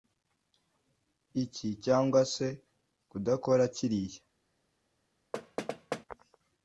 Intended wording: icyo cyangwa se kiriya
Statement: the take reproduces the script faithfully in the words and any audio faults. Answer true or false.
false